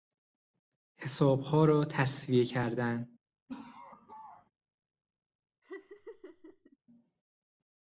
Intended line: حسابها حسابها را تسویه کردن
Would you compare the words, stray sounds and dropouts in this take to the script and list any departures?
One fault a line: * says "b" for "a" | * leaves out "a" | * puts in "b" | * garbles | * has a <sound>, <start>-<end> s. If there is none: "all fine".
* leaves out "حسابها"
* has a laugh, 3.5-4.5 s
* has a laugh, 5.6-6.8 s